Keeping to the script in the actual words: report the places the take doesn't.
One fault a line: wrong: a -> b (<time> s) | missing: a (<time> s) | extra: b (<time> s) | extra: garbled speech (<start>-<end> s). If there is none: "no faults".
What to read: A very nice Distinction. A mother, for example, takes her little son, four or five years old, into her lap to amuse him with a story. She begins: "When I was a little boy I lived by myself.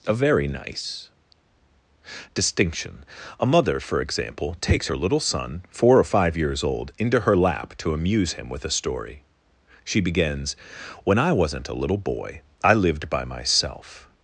wrong: was -> wasn't (11.3 s)